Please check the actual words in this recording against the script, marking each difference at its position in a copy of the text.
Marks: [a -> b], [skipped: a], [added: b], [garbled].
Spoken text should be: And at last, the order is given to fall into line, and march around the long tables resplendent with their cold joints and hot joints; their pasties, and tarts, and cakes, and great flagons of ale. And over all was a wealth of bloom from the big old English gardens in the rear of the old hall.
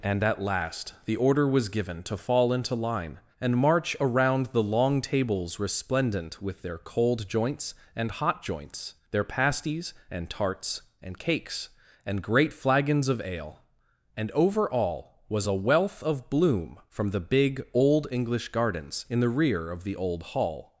And at last, the order [is -> was] given to fall into line, and march around the long tables resplendent with their cold joints and hot joints; their pasties, and tarts, and cakes, and great flagons of ale. And over all was a wealth of bloom from the big old English gardens in the rear of the old hall.